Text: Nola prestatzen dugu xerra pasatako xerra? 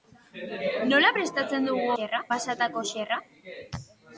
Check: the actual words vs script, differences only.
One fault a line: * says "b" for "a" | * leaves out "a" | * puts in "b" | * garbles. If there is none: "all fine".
all fine